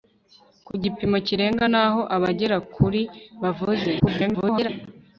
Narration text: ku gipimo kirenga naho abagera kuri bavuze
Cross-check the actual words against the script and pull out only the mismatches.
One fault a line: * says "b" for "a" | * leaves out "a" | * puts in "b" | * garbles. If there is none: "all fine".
* garbles